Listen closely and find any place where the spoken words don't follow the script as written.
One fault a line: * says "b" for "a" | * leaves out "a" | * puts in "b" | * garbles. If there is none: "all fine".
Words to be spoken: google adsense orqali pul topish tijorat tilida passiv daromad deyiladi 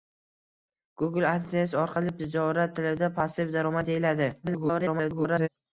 * leaves out "pul topish"
* garbles